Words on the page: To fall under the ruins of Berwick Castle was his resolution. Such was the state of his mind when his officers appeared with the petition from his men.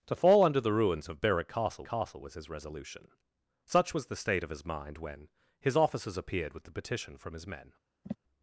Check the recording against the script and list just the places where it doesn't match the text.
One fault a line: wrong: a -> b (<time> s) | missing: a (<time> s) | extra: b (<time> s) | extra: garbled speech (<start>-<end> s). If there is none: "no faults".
extra: Castle (1.8 s)